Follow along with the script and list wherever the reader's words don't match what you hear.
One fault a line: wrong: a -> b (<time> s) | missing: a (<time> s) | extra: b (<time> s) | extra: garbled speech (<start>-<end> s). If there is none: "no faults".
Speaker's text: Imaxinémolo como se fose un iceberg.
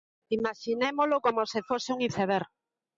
no faults